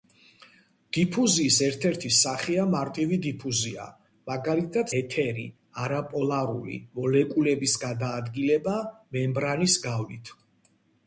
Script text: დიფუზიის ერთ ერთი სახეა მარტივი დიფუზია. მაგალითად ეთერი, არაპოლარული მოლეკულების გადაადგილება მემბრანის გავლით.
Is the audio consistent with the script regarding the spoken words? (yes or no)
yes